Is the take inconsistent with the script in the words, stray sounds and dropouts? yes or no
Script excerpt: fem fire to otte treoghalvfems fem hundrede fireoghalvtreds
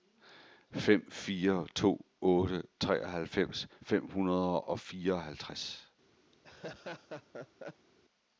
yes